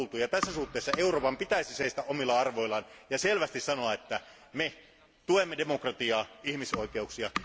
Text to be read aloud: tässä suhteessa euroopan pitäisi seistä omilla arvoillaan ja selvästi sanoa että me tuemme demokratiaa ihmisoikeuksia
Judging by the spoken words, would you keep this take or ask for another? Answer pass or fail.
fail